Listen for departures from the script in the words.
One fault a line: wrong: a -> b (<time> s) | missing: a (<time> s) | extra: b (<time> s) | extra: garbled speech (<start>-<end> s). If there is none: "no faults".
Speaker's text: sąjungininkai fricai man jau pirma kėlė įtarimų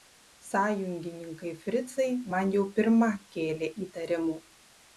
no faults